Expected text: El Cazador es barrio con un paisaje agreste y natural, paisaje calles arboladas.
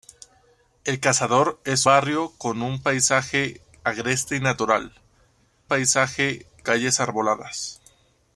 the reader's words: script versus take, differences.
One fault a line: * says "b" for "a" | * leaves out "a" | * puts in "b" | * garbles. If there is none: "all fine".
all fine